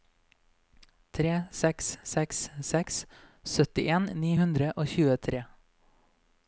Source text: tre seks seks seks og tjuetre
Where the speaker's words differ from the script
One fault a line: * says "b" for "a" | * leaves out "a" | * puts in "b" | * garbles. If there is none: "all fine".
* puts in "syttien ni hundre"